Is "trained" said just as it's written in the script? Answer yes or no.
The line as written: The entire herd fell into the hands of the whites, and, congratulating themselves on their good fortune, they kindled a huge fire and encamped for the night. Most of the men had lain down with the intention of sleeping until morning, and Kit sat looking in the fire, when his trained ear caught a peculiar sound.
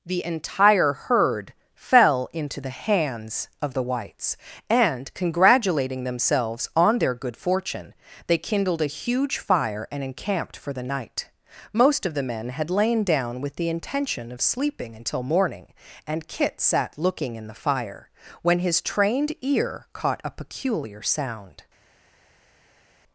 yes